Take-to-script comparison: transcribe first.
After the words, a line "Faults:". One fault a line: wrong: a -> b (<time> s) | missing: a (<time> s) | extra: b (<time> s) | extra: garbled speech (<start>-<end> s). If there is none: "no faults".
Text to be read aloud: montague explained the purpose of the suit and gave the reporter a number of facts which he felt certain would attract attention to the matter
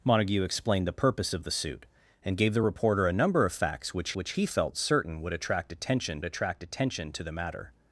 montague explained the purpose of the suit and gave the reporter a number of facts which which he felt certain would attract attention attract attention to the matter
Faults:
extra: which (4.1 s)
extra: attract attention (6.2 s)